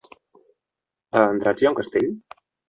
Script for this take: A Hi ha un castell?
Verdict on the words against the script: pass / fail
fail